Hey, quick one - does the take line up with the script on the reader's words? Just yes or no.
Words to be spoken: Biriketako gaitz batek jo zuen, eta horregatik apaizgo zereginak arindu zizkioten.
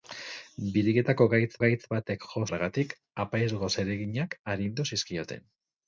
no